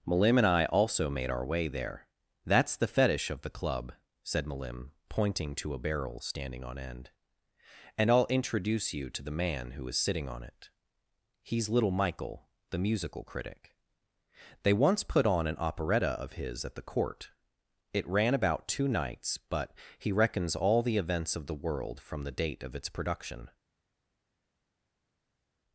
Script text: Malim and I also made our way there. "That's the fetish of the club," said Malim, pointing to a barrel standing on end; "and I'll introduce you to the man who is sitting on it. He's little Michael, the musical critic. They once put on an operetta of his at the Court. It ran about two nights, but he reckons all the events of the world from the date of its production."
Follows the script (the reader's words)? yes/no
yes